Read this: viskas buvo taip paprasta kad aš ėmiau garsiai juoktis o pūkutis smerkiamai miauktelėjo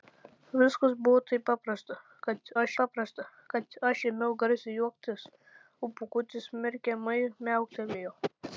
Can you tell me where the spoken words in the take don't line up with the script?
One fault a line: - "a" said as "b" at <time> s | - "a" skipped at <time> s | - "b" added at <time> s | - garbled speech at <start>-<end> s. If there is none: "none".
- "paprasta kad aš" added at 2.8 s